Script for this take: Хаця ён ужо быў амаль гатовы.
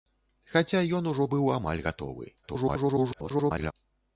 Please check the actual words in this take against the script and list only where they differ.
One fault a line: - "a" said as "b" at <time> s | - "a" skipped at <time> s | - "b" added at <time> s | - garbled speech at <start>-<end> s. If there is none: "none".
- garbled speech at 2.4-3.7 s